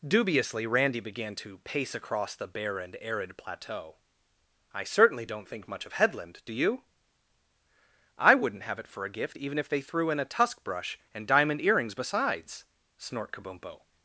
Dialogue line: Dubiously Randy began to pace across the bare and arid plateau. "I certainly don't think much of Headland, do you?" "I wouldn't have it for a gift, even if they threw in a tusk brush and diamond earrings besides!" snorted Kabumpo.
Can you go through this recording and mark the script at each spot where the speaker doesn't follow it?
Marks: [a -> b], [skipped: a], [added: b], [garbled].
Dubiously Randy began to pace across the bare and arid plateau. "I certainly don't think much of Headland, do you?" "I wouldn't have it for a gift, even if they threw in a tusk brush and diamond earrings besides!" [snorted -> snort] Kabumpo.